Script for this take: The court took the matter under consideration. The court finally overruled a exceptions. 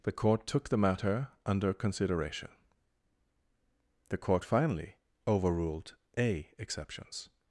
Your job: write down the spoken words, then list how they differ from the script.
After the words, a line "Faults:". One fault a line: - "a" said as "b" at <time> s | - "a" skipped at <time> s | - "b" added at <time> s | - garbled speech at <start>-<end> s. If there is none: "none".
The court took the matter under consideration. The court finally overruled a exceptions.
Faults:
none